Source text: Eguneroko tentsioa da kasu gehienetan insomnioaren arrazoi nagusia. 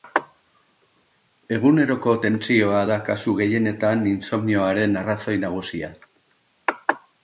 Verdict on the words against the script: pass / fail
pass